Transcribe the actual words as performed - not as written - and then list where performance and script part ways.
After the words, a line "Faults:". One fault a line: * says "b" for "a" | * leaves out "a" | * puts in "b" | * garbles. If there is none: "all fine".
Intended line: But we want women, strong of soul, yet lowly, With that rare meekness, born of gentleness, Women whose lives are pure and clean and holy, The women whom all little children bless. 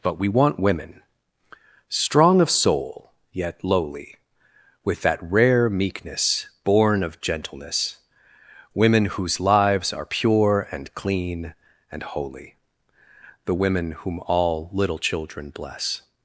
But we want women, strong of soul, yet lowly, With that rare meekness, born of gentleness, Women whose lives are pure and clean and holy, The women whom all little children bless.
Faults:
all fine